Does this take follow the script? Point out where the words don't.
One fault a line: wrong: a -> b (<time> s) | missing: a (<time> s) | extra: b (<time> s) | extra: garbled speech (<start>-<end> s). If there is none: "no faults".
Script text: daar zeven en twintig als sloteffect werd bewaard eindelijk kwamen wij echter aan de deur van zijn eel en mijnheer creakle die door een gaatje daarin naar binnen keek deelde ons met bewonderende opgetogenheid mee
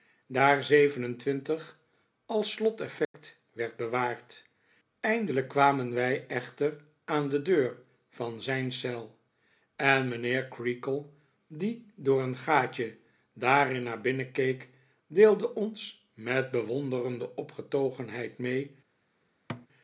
no faults